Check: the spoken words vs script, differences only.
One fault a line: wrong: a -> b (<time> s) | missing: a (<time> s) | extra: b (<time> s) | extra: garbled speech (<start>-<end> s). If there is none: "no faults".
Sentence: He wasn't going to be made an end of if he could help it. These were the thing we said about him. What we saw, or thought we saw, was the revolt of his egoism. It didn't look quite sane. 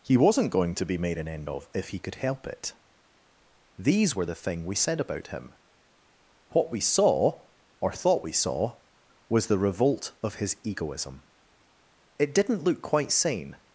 no faults